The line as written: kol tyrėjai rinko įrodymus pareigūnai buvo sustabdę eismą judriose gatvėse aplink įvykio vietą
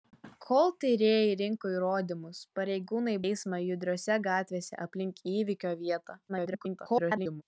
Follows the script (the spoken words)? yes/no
no